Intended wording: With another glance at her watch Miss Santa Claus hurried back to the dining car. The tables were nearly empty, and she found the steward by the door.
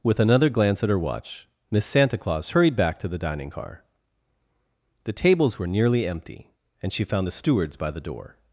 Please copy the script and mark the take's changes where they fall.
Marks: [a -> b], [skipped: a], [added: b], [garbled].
With another glance at her watch Miss Santa Claus hurried back to the dining car. The tables were nearly empty, and she found the [steward -> stewards] by the door.